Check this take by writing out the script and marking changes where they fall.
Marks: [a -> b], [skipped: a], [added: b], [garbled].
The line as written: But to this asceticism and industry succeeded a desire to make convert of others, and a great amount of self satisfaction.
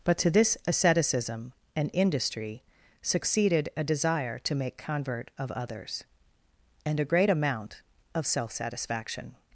But to this asceticism and industry succeeded a desire to make convert of others, and a great amount of self satisfaction.